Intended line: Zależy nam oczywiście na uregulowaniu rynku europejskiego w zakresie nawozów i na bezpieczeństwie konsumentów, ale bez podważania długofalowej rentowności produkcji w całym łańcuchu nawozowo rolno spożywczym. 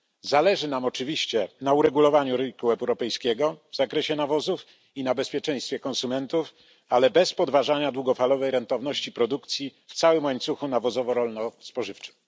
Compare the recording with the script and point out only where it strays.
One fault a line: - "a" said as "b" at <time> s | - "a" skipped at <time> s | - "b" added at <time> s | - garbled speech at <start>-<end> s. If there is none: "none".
none